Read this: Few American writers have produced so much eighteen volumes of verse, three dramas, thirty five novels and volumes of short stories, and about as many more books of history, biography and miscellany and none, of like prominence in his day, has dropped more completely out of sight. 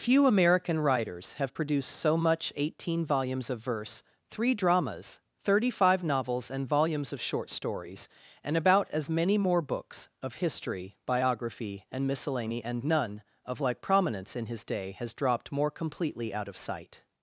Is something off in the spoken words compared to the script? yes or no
no